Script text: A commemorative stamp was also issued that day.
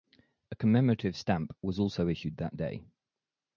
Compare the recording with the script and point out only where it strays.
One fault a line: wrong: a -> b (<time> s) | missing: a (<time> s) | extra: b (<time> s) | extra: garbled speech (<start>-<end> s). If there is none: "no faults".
no faults